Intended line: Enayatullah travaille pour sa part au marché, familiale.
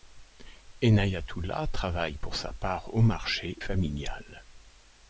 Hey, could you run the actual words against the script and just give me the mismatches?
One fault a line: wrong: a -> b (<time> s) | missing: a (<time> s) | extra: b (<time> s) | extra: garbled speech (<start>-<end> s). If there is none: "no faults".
no faults